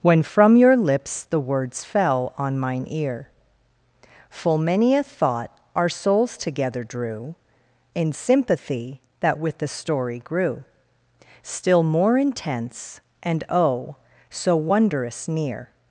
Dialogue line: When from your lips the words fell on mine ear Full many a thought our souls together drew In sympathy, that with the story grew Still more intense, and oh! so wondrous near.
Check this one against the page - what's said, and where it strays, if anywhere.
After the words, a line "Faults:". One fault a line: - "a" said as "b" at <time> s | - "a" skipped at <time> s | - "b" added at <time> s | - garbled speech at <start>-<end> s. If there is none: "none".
When from your lips the words fell on mine ear Full many a thought our souls together drew In sympathy, that with the story grew Still more intense, and oh! so wondrous near.
Faults:
none